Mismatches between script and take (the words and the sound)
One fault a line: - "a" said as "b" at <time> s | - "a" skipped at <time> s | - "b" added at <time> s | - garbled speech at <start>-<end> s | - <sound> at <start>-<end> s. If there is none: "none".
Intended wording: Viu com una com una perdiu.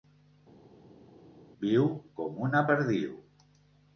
- "com una" skipped at 2.6 s